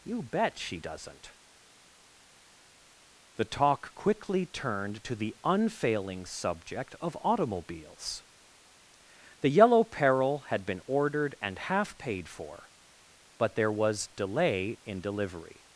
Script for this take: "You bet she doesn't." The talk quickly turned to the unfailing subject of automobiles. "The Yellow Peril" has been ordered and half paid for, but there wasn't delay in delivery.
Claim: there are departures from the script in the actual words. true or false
true